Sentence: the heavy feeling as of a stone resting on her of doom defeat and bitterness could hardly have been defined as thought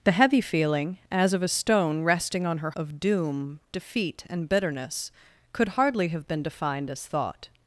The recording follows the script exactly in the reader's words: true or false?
true